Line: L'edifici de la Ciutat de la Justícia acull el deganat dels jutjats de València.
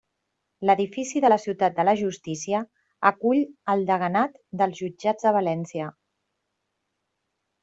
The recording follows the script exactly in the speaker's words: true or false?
true